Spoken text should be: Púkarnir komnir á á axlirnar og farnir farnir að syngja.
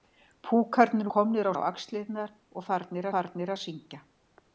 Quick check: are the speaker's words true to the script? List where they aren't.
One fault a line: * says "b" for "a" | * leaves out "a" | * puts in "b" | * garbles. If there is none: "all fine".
all fine